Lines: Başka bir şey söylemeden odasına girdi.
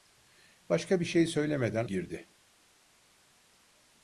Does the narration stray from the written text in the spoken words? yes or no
yes